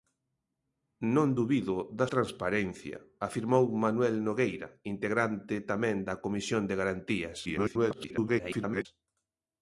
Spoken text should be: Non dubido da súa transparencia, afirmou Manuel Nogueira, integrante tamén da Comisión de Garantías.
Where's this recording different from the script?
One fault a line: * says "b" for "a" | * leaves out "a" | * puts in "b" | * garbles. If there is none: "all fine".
* leaves out "súa"
* garbles